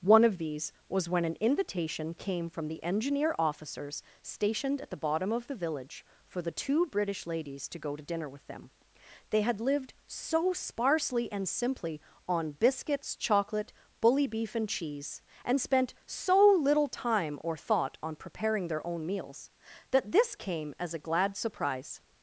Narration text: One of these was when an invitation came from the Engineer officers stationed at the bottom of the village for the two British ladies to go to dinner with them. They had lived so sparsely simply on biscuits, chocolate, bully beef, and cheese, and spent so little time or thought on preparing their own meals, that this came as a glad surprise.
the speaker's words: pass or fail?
fail